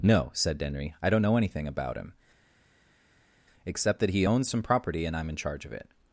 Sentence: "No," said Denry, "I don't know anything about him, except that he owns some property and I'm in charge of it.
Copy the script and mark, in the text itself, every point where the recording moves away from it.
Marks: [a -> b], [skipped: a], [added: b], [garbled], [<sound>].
"No," said Denry, "I don't know anything about him, except that he owns some property and I'm in charge of it.